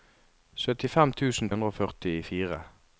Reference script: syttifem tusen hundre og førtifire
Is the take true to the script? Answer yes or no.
yes